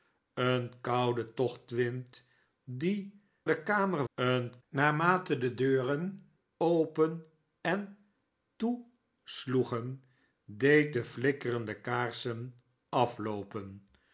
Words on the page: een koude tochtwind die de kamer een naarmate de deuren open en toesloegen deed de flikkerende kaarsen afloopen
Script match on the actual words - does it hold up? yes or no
yes